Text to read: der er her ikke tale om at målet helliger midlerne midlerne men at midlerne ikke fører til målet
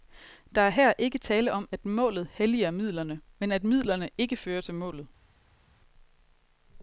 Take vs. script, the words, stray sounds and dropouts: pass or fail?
fail